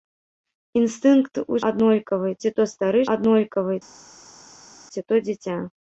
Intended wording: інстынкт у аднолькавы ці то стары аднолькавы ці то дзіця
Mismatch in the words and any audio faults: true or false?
false